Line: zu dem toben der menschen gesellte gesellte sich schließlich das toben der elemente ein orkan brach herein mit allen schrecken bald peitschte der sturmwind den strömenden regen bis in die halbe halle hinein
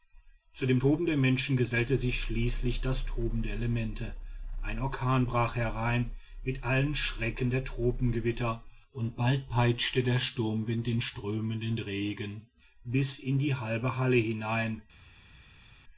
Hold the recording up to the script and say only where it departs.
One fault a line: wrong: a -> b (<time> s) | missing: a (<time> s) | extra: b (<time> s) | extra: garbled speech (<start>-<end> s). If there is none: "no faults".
missing: gesellte (2.0 s)
extra: der tropengewitter und (7.5 s)